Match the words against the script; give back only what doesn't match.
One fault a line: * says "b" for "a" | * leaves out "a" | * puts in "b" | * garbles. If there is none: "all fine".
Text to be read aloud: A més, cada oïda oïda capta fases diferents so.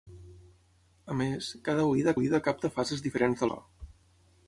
all fine